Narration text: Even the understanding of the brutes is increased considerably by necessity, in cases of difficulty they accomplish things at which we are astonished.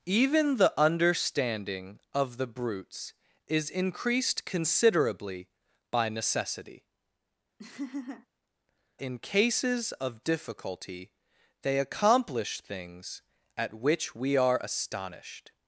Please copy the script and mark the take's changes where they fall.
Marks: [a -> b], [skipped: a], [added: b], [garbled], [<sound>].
Even the understanding of the brutes is increased considerably by necessity, [laugh] in cases of difficulty they accomplish things at which we are astonished.